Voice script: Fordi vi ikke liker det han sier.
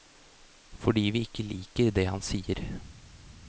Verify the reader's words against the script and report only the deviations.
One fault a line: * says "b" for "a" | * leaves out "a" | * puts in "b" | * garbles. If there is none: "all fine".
all fine